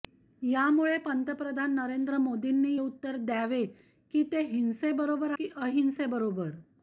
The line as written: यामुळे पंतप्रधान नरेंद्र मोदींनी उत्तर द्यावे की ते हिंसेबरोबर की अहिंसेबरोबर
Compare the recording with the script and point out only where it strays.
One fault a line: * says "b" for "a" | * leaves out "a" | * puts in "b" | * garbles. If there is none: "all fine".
all fine